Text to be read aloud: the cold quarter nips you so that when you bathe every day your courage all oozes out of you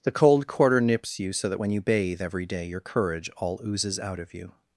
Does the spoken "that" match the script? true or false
true